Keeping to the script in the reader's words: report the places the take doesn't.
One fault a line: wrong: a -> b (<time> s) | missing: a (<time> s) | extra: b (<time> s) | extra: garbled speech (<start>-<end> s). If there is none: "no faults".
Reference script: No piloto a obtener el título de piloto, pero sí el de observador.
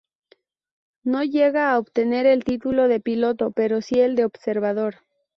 wrong: piloto -> llega (1.2 s)